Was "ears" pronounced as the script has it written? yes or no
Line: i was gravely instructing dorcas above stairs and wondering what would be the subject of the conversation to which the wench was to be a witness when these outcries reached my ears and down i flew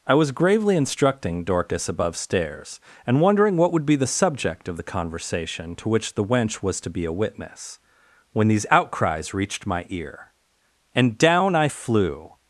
no